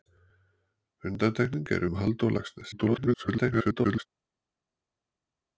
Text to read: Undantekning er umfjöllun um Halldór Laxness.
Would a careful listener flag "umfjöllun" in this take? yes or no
yes